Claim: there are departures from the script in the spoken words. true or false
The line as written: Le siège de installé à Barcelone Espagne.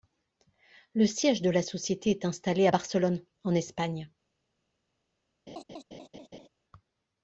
true